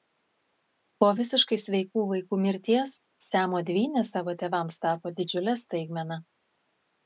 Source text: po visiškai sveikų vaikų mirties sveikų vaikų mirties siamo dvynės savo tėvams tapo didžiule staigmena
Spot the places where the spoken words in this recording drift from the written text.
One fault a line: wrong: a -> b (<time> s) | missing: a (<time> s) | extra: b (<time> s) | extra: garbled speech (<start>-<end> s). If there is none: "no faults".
missing: sveikų vaikų mirties (2.9 s)